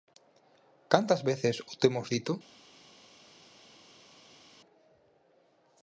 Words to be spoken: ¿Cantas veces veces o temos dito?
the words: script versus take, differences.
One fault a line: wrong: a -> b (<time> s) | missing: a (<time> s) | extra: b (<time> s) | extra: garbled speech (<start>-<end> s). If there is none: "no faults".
missing: veces (1.6 s)